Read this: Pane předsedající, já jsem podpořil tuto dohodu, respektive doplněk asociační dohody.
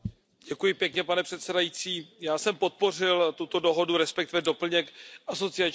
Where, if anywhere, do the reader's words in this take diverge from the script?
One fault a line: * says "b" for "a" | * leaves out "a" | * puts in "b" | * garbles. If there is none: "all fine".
all fine